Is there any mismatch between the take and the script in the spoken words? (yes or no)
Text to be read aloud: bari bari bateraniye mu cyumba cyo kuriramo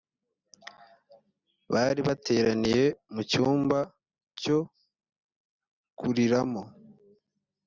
yes